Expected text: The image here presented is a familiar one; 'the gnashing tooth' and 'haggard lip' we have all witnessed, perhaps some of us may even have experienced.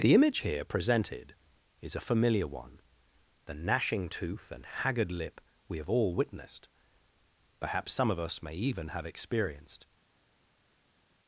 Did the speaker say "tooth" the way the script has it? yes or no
yes